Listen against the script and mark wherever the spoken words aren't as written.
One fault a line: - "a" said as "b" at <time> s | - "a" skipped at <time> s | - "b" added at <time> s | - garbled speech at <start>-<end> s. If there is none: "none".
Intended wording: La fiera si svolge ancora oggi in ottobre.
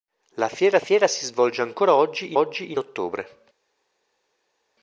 - "fiera" added at 0.8 s
- "oggi" added at 2.3 s